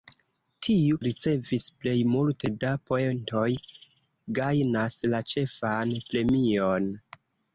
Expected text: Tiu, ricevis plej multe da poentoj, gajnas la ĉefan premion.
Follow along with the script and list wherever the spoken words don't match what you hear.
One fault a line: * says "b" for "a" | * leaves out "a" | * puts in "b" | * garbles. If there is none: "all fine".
all fine